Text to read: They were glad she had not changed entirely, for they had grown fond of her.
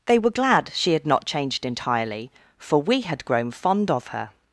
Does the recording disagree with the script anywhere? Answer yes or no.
yes